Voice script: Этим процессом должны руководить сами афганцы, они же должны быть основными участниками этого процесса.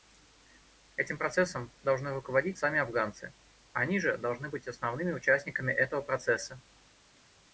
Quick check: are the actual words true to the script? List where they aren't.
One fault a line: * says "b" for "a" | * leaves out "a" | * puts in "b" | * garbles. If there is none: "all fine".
all fine